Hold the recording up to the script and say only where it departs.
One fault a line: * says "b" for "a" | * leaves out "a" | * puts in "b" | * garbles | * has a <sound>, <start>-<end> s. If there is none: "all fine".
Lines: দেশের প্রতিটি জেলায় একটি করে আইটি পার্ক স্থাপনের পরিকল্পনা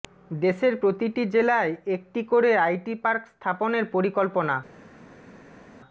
all fine